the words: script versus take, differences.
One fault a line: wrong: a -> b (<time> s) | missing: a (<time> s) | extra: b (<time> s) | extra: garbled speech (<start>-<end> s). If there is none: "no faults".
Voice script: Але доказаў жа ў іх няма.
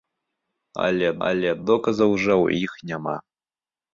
extra: але (1.3 s)